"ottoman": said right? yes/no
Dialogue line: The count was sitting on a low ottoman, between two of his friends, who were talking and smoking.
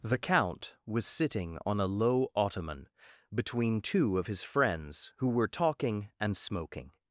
yes